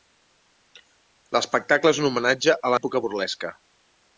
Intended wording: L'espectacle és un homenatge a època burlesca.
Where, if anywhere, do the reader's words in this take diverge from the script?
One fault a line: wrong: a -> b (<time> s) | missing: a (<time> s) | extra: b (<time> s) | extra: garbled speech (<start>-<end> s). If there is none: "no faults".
no faults